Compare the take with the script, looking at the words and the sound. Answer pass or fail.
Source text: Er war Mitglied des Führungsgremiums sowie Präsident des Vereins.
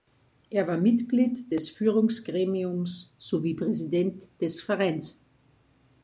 pass